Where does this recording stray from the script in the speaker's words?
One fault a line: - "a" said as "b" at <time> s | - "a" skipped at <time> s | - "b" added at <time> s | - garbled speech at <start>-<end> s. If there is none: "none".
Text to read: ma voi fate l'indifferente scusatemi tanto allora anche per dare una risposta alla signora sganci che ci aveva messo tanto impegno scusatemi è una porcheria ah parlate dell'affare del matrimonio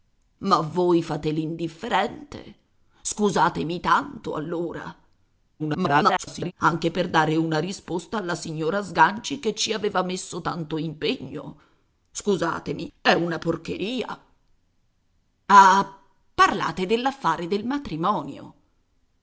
- garbled speech at 5.6-6.5 s